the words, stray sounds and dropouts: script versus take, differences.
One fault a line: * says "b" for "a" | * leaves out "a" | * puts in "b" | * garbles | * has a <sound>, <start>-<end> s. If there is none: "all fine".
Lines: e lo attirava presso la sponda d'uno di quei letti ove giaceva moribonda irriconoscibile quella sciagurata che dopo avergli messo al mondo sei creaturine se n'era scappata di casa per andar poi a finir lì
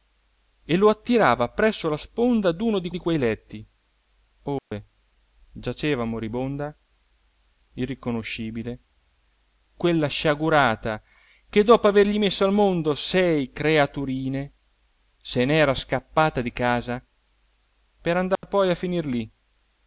* puts in "di"
* has a dropout, 4.6-4.7 s
* has a dropout, 18.4-18.4 s